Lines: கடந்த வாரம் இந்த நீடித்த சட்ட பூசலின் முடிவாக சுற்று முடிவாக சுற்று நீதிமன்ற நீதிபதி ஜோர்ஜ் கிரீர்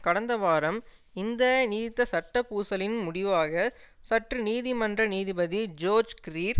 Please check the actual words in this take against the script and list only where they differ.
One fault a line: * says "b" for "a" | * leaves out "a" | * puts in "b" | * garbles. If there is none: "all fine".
* leaves out "முடிவாக சுற்று"